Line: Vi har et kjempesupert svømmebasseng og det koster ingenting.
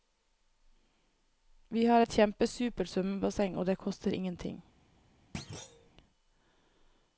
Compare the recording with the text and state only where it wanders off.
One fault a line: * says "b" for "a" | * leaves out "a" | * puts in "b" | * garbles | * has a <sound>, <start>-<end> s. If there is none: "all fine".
* has a thud, 5.3-5.9 s